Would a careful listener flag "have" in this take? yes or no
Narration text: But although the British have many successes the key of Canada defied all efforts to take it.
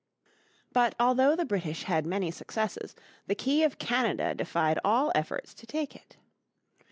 yes